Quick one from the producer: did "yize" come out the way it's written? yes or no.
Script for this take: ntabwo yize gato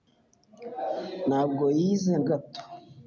yes